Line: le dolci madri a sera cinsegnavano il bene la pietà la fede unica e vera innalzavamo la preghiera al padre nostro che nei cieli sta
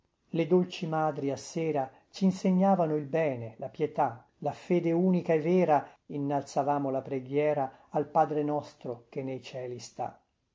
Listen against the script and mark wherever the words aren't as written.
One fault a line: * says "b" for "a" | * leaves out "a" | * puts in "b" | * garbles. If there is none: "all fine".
all fine